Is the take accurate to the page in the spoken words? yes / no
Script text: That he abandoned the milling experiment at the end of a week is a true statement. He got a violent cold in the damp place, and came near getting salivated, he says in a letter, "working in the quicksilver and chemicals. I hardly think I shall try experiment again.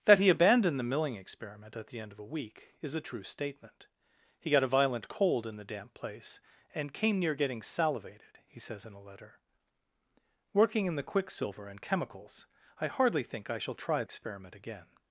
yes